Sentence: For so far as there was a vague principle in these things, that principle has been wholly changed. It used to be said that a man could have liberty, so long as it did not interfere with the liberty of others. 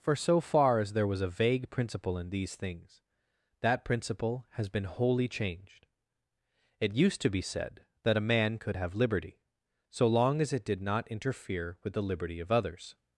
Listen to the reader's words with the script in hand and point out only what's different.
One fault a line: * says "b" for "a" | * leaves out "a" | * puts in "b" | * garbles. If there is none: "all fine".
all fine